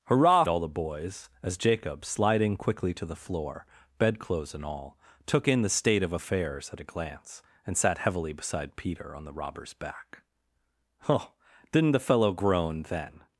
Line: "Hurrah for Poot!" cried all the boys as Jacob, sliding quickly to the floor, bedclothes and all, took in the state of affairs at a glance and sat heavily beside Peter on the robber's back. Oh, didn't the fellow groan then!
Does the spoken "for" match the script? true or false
false